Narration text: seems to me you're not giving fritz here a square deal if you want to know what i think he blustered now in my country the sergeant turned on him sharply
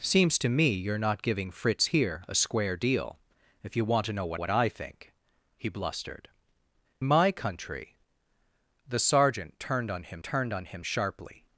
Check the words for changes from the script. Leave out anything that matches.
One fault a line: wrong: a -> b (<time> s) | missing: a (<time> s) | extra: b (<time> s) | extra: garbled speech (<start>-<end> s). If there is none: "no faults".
extra: what (4.3 s)
missing: now in (6.3 s)
extra: turned on him (10.2 s)